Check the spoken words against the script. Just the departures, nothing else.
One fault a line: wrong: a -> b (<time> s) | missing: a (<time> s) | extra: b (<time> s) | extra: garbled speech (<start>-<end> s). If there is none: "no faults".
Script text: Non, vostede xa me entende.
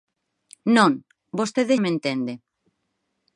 missing: xa (1.8 s)